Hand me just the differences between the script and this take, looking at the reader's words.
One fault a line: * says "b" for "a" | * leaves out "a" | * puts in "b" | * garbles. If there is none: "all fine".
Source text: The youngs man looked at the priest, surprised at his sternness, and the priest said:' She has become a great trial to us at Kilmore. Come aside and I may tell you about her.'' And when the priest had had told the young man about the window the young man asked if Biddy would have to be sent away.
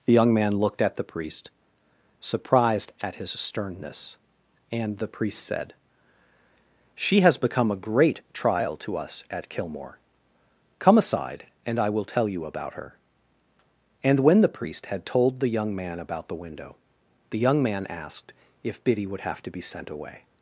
* says "young" for "youngs"
* says "will" for "may"
* leaves out "had"